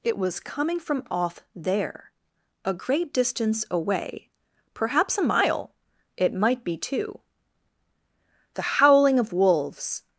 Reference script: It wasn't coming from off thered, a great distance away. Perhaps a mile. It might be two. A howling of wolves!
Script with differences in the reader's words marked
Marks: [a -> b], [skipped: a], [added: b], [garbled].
It [wasn't -> was] coming from off [thered, -> there] a great distance away. Perhaps a mile. It might be two. [A -> The] howling of wolves!